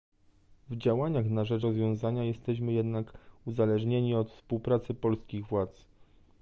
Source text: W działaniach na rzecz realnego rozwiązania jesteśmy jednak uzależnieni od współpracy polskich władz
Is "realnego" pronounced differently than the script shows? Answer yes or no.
yes